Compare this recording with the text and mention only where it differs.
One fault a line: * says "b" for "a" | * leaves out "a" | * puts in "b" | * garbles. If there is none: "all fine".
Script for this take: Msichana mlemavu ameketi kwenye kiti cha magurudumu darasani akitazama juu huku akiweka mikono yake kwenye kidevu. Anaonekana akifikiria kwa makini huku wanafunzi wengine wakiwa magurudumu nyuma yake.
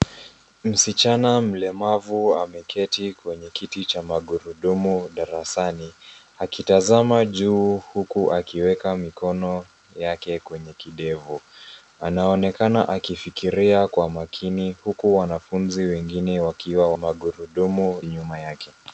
all fine